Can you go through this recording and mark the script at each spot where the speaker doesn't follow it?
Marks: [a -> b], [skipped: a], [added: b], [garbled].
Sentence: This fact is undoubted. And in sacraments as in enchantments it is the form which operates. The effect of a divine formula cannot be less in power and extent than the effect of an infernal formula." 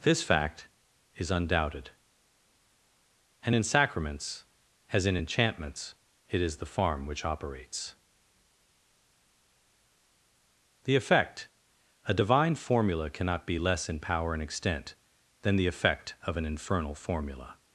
This fact is undoubted. And in sacraments as in enchantments it is the [form -> farm] which operates. The effect [skipped: of] a divine formula cannot be less in power and extent than the effect of an infernal formula."